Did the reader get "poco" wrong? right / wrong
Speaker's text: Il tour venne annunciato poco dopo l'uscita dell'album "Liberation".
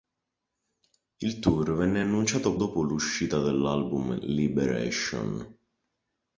wrong